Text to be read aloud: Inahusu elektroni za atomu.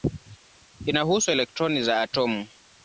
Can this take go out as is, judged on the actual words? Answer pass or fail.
pass